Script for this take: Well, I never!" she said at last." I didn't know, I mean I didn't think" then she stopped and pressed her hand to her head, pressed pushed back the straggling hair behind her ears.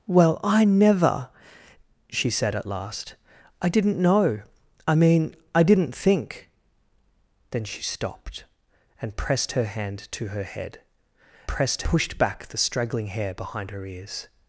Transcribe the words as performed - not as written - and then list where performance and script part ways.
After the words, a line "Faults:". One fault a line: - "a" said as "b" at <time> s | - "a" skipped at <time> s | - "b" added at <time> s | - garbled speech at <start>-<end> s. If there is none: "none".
Well, I never!" she said at last." I didn't know, I mean I didn't think" then she stopped and pressed her hand to her head, pressed pushed back the straggling hair behind her ears.
Faults:
none